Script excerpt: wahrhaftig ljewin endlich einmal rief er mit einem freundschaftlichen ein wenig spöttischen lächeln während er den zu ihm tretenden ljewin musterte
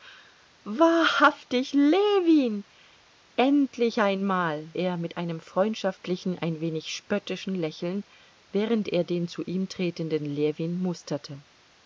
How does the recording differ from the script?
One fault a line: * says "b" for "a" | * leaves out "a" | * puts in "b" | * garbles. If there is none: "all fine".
* leaves out "rief"